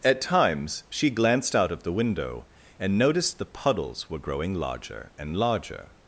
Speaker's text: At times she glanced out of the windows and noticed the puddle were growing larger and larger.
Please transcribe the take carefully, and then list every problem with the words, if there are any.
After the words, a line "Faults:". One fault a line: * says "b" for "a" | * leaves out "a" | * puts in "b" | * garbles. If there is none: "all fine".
At times she glanced out of the window and noticed the puddles were growing larger and larger.
Faults:
* says "window" for "windows"
* says "puddles" for "puddle"